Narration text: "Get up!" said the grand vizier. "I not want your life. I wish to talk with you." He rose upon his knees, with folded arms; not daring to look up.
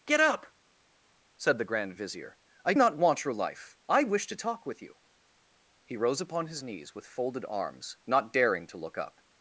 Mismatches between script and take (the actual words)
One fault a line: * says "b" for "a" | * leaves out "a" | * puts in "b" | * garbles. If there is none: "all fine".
all fine